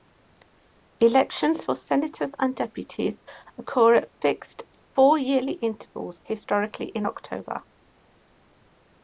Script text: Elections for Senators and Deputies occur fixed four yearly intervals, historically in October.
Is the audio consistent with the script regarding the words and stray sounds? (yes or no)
no